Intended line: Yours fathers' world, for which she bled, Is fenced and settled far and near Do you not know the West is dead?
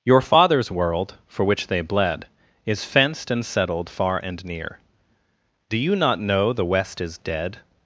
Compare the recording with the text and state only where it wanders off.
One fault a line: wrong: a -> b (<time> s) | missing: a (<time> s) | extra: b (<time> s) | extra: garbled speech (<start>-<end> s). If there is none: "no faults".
wrong: Yours -> Your (0.0 s)
wrong: she -> they (1.7 s)